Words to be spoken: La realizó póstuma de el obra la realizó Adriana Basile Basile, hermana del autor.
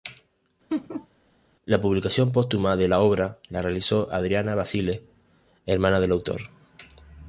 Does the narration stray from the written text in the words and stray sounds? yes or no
yes